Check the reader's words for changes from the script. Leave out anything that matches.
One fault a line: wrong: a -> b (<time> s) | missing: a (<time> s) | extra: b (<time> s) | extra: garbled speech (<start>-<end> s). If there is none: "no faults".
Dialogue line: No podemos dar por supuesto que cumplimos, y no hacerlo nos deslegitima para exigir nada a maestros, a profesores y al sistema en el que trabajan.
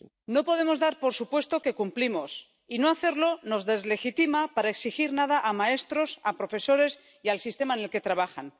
no faults